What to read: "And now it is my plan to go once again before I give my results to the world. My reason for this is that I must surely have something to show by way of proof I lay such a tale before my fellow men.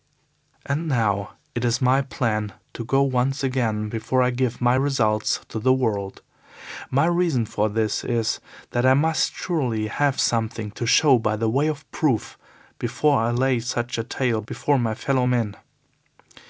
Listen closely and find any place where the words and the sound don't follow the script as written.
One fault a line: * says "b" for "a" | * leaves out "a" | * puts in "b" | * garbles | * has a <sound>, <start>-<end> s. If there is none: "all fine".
* puts in "before"